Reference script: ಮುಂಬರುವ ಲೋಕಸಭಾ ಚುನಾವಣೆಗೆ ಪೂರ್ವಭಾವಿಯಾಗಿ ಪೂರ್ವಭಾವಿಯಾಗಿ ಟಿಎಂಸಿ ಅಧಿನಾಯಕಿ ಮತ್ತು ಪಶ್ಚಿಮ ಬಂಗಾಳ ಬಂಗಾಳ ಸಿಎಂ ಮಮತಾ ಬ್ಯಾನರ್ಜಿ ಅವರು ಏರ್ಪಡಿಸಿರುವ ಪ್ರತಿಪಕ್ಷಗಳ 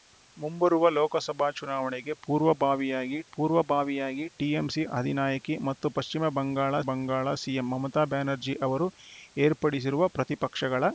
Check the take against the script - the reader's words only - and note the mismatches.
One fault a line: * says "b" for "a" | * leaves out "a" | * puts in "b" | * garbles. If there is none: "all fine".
all fine